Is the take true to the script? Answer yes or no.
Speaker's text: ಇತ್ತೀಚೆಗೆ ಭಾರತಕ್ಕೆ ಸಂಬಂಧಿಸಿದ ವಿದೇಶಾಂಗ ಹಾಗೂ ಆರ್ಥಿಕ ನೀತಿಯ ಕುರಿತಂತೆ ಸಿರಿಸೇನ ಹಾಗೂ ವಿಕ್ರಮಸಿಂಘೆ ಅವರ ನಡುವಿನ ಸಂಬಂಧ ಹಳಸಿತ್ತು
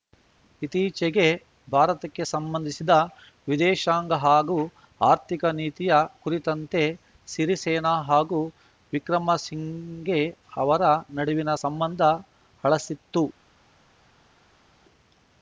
yes